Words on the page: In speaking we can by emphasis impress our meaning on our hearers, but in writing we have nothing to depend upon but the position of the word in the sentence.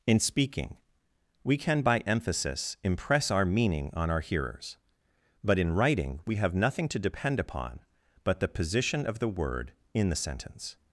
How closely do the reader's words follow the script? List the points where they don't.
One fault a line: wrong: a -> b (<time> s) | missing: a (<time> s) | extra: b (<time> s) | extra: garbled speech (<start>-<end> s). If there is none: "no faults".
no faults